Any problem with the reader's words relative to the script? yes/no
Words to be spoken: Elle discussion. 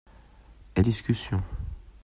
no